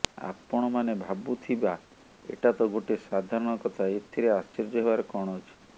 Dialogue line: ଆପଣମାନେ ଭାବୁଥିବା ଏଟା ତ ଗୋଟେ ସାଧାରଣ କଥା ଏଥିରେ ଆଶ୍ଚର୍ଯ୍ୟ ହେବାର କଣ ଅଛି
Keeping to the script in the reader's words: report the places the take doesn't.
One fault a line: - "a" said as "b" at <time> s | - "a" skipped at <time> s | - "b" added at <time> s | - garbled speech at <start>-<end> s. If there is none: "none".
none